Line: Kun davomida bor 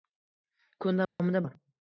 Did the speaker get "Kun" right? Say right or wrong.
right